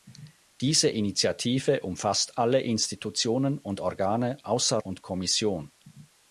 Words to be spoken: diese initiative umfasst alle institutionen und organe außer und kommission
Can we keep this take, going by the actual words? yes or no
yes